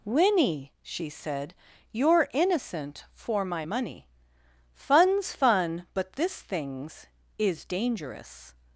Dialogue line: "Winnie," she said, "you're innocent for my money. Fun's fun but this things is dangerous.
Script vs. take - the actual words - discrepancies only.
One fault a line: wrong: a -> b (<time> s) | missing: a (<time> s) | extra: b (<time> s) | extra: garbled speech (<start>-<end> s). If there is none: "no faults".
no faults